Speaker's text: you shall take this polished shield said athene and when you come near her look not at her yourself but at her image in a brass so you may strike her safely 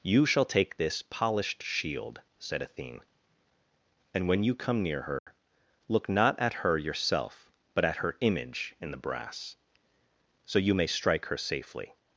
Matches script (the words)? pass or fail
fail